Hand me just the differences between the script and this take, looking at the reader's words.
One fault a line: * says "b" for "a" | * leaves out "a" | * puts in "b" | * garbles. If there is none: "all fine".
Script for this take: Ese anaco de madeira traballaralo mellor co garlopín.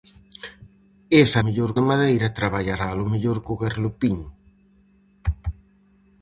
* says "mellor" for "anaco"